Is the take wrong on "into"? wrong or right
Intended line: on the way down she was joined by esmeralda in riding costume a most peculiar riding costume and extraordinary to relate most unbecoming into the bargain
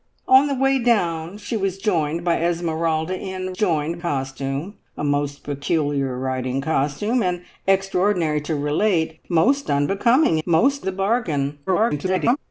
wrong